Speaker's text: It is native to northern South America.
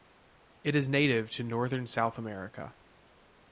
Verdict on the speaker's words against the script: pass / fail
pass